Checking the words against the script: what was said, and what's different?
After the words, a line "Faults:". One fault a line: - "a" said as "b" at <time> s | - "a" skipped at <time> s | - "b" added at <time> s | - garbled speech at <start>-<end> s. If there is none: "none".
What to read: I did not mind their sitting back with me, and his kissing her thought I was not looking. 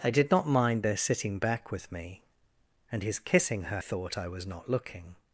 I did not mind their sitting back with me, and his kissing her thought I was not looking.
Faults:
none